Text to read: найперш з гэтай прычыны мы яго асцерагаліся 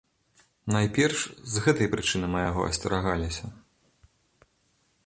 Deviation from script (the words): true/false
false